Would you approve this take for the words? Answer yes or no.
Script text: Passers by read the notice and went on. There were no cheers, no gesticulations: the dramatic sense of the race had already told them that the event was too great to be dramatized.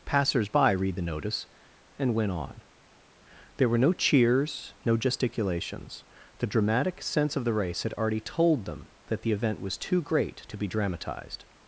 yes